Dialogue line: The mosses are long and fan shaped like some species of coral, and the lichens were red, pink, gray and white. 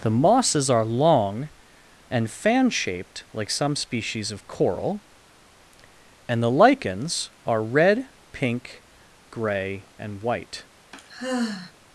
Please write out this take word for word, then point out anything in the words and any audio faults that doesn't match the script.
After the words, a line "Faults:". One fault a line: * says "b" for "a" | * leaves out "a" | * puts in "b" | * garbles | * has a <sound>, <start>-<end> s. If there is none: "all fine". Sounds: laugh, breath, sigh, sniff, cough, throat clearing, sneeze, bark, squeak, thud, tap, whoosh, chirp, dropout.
The mosses are long and fan shaped like some species of coral, and the lichens are red, pink, gray and white.
Faults:
* says "are" for "were"
* has a sigh, 10.9-11.7 s